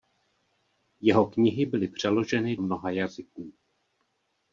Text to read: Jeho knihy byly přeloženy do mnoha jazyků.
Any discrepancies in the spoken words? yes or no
yes